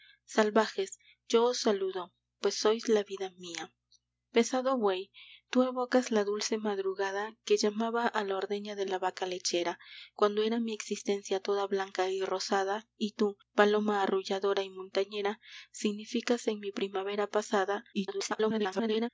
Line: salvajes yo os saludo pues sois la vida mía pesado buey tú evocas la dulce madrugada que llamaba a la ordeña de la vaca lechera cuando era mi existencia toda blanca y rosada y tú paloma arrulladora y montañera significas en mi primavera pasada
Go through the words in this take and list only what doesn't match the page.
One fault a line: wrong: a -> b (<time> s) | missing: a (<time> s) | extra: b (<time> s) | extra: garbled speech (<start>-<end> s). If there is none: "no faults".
extra: garbled speech (17.9-19.1 s)